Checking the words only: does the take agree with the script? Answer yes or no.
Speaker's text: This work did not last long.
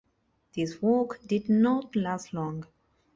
yes